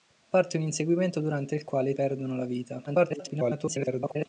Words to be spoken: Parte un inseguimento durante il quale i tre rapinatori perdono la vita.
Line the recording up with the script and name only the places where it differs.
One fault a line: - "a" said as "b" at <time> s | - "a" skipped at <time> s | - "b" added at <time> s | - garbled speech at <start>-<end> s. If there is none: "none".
- "tre rapinatori" skipped at 1.9 s
- garbled speech at 2.9-4.3 s